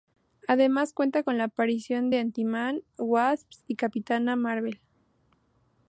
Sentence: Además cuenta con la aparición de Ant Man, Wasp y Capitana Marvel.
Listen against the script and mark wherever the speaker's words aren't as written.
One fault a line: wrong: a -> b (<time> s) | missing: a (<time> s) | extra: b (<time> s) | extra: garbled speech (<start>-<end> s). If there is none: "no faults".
no faults